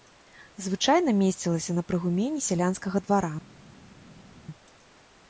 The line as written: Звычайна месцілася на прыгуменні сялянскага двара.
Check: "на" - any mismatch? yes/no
no